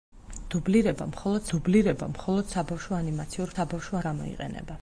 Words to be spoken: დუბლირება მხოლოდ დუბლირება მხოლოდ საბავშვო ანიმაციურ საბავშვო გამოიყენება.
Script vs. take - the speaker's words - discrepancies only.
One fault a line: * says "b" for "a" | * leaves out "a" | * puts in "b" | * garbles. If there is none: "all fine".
all fine